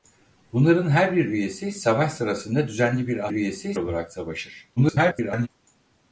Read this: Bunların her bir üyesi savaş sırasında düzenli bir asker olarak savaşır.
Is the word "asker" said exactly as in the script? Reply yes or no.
no